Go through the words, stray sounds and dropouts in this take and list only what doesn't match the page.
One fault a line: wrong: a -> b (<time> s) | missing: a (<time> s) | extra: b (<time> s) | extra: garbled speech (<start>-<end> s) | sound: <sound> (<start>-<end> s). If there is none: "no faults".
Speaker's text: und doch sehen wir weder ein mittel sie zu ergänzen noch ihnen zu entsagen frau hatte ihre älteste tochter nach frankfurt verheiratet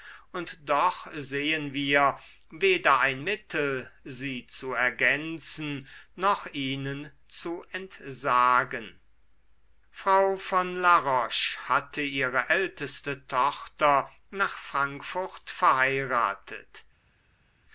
extra: von la roche (10.4 s)